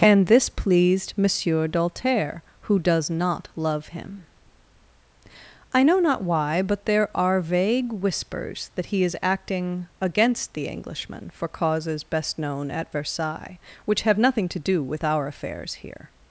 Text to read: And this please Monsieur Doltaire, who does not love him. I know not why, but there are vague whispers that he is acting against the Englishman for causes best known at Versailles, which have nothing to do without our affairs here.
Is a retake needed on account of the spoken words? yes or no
yes